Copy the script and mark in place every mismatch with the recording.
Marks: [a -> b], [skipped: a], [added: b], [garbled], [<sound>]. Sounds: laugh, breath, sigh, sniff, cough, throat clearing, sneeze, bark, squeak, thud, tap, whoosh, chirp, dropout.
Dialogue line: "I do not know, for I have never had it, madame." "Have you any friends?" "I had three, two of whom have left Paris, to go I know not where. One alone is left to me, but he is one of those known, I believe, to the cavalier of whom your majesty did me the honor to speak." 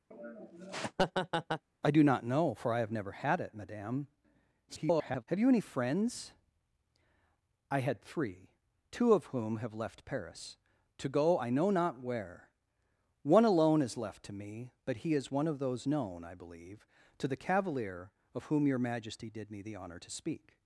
[laugh] "I do not know, for I have never had it, madame." [garbled] "Have you any friends?" "I had three, two of whom have left Paris, to go I know not where. One alone is left to me, but he is one of those known, I believe, to the cavalier of whom your majesty did me the honor to speak."